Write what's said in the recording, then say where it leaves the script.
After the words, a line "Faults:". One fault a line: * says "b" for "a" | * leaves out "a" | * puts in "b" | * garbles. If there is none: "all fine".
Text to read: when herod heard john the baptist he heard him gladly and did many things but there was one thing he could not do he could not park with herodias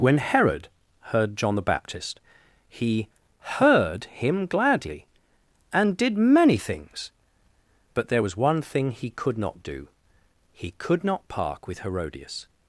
when herod heard john the baptist he heard him gladly and did many things but there was one thing he could not do he could not park with herodias
Faults:
all fine